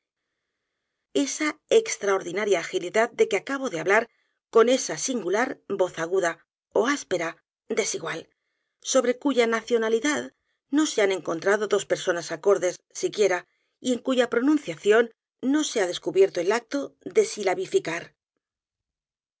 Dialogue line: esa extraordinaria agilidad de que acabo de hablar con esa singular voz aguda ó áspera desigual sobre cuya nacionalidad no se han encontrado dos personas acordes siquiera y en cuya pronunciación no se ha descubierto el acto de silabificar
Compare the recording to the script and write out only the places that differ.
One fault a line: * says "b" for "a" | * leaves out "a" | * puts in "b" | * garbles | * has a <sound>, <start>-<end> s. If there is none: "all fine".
all fine